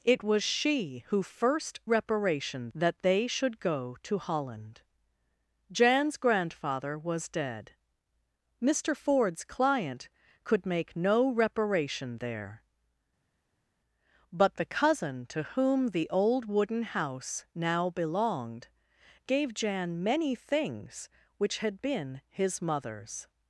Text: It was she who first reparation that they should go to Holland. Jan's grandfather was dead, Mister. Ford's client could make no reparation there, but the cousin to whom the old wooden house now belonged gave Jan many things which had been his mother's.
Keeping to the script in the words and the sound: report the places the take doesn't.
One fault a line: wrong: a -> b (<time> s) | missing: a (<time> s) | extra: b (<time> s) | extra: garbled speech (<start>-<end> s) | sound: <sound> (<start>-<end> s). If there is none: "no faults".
no faults